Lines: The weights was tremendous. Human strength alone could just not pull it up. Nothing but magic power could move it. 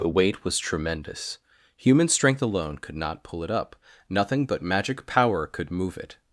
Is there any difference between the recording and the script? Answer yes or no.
yes